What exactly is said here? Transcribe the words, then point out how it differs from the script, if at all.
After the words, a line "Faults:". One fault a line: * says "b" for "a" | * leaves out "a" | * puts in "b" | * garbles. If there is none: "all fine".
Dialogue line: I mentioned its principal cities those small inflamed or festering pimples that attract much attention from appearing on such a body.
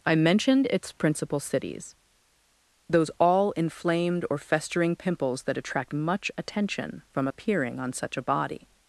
I mentioned its principal cities those all inflamed or festering pimples that attract much attention from appearing on such a body.
Faults:
* says "all" for "small"